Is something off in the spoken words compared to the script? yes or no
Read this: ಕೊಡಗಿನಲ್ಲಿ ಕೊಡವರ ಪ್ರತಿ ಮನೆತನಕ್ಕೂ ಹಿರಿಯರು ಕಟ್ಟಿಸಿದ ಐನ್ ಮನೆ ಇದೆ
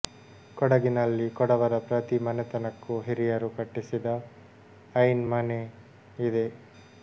no